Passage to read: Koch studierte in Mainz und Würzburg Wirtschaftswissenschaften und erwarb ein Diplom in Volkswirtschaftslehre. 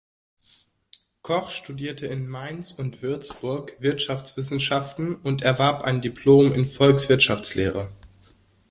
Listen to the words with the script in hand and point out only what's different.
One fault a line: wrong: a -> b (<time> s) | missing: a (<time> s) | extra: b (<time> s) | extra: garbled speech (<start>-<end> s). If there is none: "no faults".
no faults